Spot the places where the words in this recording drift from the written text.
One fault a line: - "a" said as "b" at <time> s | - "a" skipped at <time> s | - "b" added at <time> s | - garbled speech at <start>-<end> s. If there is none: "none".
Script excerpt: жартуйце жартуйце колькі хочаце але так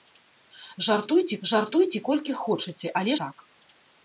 none